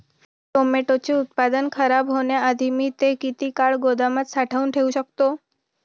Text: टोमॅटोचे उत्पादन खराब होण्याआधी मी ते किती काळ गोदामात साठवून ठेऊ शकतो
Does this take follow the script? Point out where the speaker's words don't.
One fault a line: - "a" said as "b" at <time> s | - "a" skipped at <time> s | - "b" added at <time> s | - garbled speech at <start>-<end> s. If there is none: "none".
none